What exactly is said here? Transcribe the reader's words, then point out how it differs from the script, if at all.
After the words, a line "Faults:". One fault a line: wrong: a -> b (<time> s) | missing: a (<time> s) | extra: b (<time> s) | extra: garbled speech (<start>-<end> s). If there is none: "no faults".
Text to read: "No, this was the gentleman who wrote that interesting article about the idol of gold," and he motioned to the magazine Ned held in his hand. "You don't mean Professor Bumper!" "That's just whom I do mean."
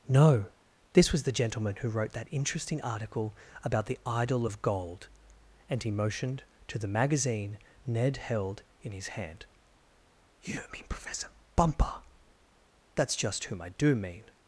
"No, this was the gentleman who wrote that interesting article about the idol of gold," and he motioned to the magazine Ned held in his hand. "You mean Professor Bumper!" "That's just whom I do mean."
Faults:
missing: don't (10.6 s)